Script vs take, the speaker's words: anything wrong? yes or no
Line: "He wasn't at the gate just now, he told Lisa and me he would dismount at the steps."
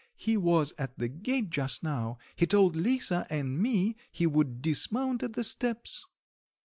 yes